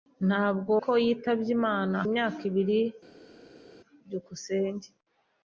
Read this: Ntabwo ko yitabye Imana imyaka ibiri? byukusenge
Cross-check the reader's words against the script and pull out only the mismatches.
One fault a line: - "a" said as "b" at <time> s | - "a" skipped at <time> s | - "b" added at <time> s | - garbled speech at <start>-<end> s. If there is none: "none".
none